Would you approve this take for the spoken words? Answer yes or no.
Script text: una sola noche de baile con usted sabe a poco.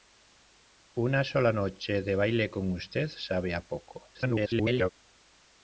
no